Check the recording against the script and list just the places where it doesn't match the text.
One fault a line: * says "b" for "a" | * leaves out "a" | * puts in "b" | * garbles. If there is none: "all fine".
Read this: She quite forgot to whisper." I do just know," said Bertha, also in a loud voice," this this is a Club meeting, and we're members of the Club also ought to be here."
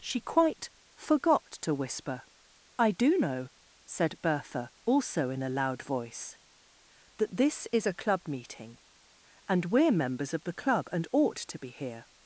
* leaves out "just"
* says "that" for "this"
* says "and" for "also"